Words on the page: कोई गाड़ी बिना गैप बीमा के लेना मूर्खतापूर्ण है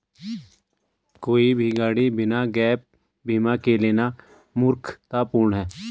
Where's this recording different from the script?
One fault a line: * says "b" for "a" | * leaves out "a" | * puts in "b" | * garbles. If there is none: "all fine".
* puts in "भी"